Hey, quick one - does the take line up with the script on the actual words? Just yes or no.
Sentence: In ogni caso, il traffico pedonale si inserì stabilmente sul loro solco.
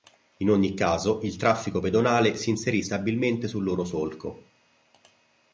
yes